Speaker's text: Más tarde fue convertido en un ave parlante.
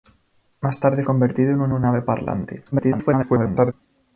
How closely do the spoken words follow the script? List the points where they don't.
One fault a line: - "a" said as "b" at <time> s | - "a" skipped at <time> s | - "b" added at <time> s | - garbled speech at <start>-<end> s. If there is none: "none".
- "fue" skipped at 1.0 s
- "un" added at 1.7 s
- garbled speech at 2.7-3.7 s